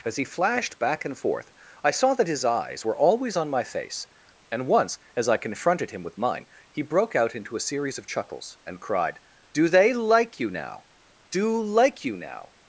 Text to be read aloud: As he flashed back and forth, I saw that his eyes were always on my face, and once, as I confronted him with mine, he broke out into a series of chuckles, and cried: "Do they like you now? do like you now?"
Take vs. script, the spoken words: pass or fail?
pass